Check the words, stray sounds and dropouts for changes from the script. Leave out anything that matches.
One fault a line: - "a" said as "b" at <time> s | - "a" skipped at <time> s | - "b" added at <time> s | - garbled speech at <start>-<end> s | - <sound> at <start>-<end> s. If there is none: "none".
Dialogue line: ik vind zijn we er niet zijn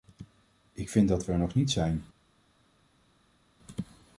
- "zijn" said as "dat" at 1.1 s
- "nog" added at 1.4 s